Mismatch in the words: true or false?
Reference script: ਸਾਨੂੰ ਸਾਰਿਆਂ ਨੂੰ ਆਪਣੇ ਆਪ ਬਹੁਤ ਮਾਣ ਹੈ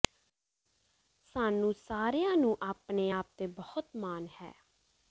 true